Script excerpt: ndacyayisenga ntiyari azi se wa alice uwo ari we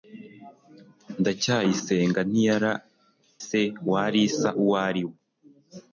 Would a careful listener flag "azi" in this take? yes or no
yes